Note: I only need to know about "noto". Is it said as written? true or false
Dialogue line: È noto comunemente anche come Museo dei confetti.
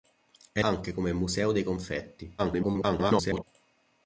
false